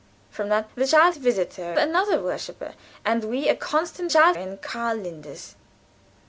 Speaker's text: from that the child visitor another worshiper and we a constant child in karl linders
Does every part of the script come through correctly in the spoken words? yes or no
yes